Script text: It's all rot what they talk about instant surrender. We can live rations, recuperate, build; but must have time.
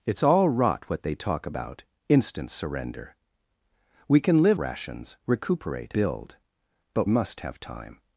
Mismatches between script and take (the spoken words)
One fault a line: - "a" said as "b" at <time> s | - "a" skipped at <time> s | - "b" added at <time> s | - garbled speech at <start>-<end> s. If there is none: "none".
none